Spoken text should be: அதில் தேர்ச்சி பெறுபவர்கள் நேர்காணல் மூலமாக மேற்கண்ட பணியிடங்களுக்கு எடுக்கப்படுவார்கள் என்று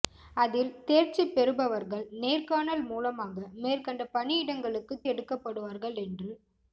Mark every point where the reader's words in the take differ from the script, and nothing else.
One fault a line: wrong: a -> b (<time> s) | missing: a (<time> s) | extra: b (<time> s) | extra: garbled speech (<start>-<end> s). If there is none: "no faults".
no faults